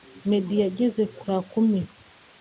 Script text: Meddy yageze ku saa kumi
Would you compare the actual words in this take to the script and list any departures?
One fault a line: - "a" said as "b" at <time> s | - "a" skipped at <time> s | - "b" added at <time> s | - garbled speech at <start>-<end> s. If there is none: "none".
none